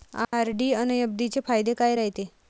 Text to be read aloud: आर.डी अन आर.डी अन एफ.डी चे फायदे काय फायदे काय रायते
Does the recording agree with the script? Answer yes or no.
no